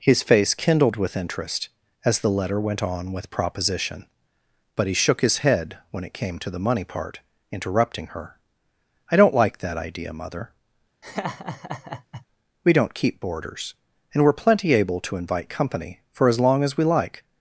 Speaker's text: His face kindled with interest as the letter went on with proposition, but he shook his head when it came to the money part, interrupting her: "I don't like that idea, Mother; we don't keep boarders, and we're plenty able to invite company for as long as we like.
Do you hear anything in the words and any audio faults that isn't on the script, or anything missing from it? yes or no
yes